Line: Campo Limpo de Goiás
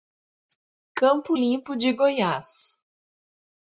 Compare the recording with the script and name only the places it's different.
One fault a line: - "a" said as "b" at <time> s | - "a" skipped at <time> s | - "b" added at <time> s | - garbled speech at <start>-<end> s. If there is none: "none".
none